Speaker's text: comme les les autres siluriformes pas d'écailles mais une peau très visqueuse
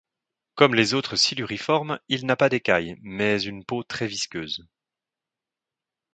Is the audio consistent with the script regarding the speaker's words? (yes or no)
no